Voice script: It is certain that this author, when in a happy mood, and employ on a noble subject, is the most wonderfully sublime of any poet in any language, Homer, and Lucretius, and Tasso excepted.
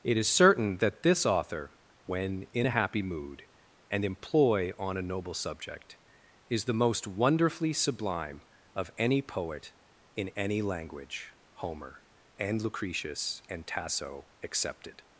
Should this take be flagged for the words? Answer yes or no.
no